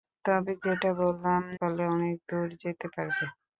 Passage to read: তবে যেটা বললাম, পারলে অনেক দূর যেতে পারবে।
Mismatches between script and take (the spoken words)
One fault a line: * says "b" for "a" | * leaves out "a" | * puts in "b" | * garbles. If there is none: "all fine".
all fine